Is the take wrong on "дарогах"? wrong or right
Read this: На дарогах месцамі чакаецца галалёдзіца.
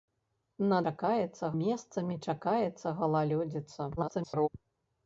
wrong